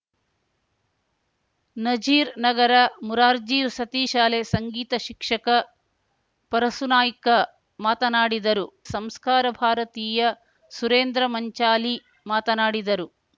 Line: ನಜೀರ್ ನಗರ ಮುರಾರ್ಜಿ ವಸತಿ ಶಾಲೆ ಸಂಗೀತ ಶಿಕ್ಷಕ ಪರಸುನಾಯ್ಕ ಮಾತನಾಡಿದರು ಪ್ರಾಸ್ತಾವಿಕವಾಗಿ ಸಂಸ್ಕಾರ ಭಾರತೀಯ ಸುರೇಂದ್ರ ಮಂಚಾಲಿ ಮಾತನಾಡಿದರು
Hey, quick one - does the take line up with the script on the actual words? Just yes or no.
no